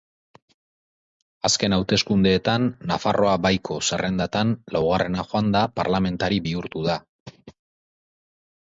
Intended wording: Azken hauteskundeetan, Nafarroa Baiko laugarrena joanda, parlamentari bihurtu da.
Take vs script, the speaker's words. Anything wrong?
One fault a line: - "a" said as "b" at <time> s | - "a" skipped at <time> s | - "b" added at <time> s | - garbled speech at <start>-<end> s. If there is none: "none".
- "zerrendatan" added at 3.9 s